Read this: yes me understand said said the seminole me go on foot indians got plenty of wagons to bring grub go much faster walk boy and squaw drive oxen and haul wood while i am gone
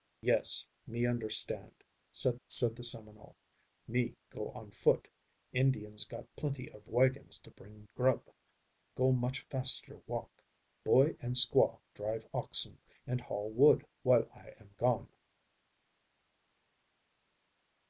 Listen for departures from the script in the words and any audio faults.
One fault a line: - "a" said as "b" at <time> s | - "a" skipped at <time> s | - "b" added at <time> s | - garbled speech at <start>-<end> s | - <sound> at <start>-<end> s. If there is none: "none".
none